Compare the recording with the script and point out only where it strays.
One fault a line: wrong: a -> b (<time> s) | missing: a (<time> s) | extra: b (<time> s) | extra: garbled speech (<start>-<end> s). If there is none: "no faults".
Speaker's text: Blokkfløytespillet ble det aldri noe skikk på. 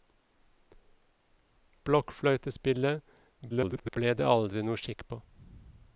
extra: garbled speech (3.5-4.0 s)